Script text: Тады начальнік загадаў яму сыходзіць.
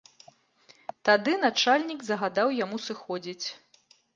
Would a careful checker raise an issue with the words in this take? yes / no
no